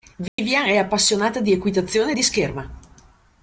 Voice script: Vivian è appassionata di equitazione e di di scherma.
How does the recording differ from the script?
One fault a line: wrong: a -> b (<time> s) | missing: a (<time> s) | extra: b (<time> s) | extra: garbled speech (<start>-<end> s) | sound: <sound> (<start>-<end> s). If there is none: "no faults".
sound: dropout (0.3-0.4 s)
missing: di (2.2 s)